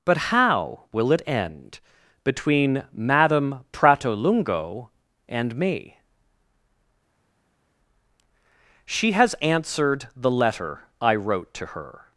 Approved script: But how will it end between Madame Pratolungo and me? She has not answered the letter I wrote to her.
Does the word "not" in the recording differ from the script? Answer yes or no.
yes